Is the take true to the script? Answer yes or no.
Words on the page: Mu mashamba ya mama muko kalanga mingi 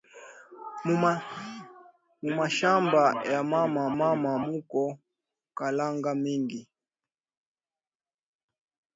no